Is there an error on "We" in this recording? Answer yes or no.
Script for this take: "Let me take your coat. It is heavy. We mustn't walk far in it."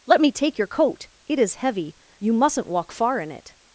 yes